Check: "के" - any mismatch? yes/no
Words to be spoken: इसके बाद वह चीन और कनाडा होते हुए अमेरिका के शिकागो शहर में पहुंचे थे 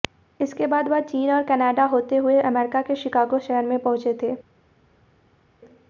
no